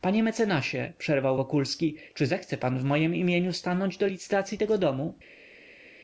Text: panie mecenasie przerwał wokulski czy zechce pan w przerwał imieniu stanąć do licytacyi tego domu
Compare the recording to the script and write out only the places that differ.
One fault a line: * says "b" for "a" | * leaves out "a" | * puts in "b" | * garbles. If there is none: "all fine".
* says "mojem" for "przerwał"